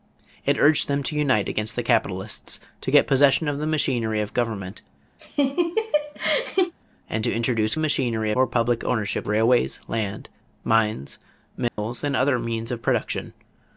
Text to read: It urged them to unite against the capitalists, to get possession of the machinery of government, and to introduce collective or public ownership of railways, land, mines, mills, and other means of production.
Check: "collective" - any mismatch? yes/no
yes